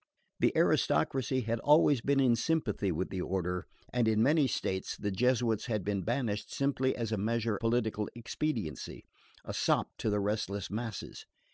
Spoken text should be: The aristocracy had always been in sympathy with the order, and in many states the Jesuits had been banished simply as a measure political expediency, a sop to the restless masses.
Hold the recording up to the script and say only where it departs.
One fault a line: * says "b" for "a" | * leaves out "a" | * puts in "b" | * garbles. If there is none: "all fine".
all fine